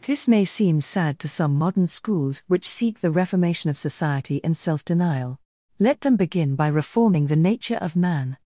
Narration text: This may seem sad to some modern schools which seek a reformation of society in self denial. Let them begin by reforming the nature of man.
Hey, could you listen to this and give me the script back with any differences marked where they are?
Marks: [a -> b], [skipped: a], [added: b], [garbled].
This may seem sad to some modern schools which seek [a -> the] reformation of society in self denial. Let them begin by reforming the nature of man.